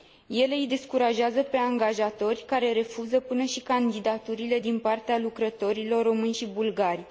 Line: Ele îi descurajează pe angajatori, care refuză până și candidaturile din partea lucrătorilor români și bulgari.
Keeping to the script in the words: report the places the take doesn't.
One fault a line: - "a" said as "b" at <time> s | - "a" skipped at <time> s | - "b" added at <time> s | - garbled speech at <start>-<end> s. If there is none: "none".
none